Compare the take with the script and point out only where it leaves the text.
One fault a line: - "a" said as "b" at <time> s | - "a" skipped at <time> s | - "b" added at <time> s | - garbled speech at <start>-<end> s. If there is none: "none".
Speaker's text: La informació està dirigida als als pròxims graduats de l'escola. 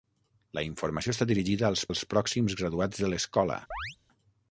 none